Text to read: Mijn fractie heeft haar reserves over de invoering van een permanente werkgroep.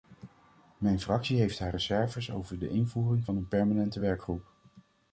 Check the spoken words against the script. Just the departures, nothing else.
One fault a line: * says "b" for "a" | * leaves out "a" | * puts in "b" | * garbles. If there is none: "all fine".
all fine